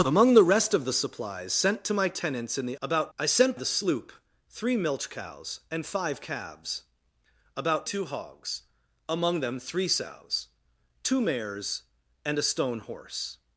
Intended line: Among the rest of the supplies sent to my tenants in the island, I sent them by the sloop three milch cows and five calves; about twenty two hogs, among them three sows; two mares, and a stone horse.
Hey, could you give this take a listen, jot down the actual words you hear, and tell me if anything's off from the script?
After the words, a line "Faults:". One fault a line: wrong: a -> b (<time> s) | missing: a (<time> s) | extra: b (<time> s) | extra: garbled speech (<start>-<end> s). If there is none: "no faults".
Among the rest of the supplies sent to my tenants in the about, I sent the sloop three milch cows and five calves; about two hogs, among them three sows; two mares, and a stone horse.
Faults:
wrong: island -> about (2.8 s)
missing: them by (3.6 s)
missing: twenty (7.9 s)